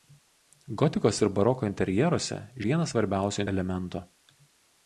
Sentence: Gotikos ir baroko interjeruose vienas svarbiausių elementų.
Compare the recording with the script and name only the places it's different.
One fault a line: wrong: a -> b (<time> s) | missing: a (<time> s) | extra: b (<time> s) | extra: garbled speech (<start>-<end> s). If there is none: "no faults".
no faults